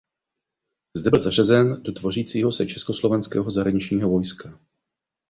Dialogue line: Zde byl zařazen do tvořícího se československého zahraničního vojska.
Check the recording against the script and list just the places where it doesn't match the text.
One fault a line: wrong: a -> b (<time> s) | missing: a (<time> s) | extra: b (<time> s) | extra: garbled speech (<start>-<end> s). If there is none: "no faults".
no faults